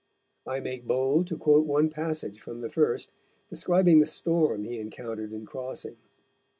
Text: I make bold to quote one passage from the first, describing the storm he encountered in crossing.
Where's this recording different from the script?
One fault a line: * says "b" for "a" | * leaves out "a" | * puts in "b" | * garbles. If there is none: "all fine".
all fine